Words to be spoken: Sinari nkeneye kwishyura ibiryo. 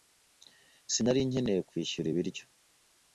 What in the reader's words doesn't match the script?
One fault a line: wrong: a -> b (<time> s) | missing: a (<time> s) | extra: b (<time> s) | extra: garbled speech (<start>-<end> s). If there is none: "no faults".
no faults